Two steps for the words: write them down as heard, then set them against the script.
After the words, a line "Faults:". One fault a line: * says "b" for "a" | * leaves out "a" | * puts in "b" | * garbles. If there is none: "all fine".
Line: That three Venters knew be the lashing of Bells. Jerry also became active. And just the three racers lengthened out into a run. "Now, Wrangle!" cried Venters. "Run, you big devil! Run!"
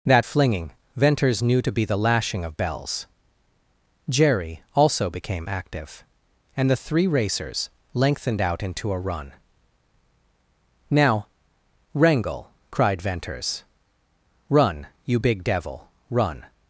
That flinging Venters knew to be the lashing of Bells. Jerry also became active. And the three racers lengthened out into a run. "Now, Wrangle!" cried Venters. "Run, you big devil! Run!"
Faults:
* says "flinging" for "three"
* puts in "to"
* leaves out "just"